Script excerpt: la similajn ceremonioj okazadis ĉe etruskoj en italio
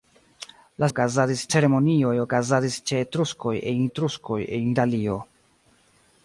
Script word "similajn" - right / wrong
wrong